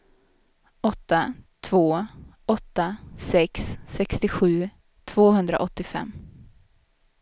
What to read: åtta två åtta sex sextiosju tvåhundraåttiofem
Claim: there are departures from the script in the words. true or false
false